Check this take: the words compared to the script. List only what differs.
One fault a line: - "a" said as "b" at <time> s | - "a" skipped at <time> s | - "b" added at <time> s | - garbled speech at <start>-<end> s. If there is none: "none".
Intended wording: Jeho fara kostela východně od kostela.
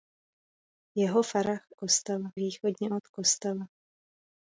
none